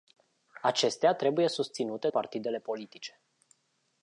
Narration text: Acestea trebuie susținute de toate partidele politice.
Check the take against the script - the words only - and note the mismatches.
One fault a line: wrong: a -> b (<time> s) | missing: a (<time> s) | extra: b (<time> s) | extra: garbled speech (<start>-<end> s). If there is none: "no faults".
missing: de toate (2.1 s)